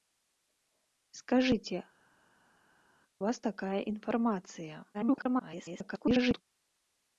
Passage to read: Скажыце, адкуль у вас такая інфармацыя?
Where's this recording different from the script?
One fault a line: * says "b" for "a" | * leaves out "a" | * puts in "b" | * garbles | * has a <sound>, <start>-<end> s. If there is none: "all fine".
* leaves out "адкуль"
* garbles